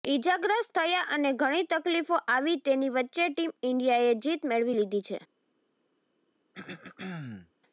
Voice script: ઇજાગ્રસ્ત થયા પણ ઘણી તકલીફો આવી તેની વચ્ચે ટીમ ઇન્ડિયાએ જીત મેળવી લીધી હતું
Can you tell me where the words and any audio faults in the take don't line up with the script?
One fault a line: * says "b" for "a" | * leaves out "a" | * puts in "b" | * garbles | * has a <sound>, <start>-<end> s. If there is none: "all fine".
* says "અને" for "પણ"
* says "છે" for "હતું"
* has a throat clearing, 6.5-7.5 s